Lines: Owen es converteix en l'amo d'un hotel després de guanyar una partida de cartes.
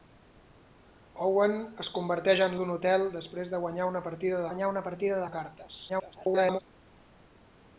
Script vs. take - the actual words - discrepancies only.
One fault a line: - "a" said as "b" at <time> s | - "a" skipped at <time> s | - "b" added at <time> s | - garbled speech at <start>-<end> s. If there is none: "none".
- "l'amo" skipped at 2.6 s
- "guanyar una partida" added at 4.5 s
- garbled speech at 5.9-6.6 s